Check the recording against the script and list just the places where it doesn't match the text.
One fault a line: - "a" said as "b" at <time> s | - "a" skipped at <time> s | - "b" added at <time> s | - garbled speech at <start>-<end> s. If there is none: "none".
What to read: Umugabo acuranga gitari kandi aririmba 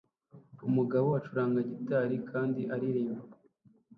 none